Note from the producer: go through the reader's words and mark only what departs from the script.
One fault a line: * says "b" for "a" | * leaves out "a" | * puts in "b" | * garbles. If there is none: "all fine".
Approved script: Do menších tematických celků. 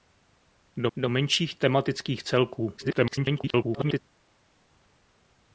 * puts in "do"
* garbles